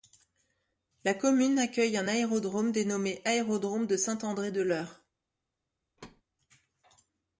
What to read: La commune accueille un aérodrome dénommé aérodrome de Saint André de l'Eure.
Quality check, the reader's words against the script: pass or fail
pass